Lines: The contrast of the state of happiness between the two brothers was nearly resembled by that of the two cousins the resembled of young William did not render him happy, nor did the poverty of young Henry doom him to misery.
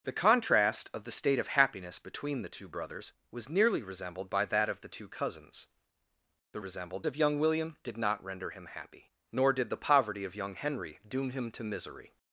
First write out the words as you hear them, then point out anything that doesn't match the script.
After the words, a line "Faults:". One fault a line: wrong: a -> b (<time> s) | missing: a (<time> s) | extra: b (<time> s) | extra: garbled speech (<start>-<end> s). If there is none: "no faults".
The contrast of the state of happiness between the two brothers was nearly resembled by that of the two cousins the resembled of young William did not render him happy, nor did the poverty of young Henry doom him to misery.
Faults:
no faults